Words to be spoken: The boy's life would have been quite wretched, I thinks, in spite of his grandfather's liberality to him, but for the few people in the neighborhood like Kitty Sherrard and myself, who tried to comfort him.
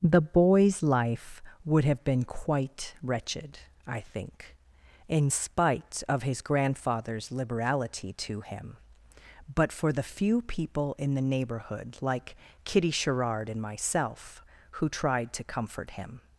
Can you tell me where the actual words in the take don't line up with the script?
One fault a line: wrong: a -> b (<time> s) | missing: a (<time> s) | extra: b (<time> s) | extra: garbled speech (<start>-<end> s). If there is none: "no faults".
wrong: thinks -> think (4.0 s)